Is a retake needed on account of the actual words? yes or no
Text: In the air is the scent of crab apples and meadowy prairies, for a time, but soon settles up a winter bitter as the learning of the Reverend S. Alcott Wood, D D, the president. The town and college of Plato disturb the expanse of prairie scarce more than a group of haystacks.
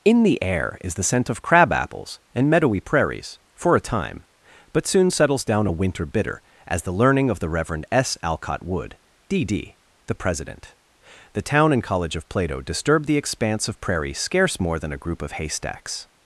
yes